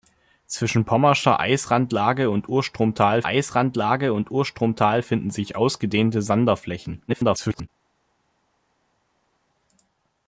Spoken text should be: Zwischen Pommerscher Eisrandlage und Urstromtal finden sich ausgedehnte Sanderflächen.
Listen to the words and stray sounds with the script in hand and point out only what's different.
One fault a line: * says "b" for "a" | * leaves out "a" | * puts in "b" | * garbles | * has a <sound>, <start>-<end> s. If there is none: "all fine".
* puts in "Eisrandlage und Urstromtal"
* garbles